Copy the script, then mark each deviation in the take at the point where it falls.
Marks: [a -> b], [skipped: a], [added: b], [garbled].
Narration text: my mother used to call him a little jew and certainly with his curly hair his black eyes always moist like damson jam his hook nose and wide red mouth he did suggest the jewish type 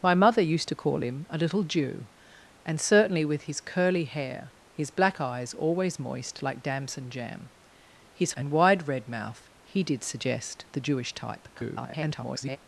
my mother used to call him a little jew and certainly with his curly hair his black eyes always moist like damson jam his [skipped: hook nose] and wide red mouth he did suggest the jewish type [garbled]